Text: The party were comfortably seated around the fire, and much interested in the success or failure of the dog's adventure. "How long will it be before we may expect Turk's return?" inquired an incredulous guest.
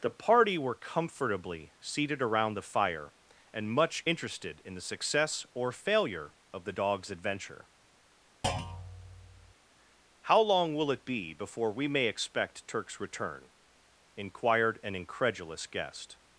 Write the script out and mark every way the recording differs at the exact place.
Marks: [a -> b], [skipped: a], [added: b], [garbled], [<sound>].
The party were comfortably seated around the fire, and much interested in the success or failure of the dog's adventure. [thud] "How long will it be before we may expect Turk's return?" inquired an incredulous guest.